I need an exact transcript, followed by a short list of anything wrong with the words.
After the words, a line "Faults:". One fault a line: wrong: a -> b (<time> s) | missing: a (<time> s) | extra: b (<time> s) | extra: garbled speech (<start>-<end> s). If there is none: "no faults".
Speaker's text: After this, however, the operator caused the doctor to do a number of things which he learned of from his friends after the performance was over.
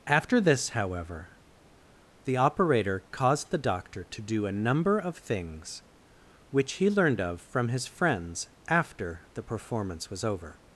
After this, however, the operator caused the doctor to do a number of things which he learned of from his friends after the performance was over.
Faults:
no faults